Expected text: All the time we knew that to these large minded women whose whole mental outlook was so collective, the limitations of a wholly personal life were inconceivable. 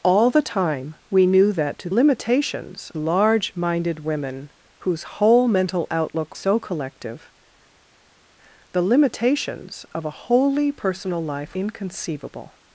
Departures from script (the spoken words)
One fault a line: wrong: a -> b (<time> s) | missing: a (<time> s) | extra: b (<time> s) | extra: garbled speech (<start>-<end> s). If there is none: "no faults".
wrong: these -> limitations (1.9 s)
missing: was (6.4 s)
missing: were (11.6 s)